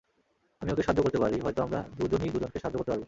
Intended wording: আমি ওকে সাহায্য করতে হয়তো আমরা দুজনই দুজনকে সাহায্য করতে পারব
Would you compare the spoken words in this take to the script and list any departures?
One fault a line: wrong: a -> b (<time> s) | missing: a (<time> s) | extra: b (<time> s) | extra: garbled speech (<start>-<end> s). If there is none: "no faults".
extra: পারি (1.2 s)